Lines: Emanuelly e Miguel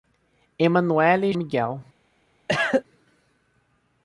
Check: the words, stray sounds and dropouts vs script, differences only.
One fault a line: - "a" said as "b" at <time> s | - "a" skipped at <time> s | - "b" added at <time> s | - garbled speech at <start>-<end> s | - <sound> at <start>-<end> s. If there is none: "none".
- cough at 2.5-2.8 s